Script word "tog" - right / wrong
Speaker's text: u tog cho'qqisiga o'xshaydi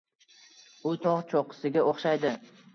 right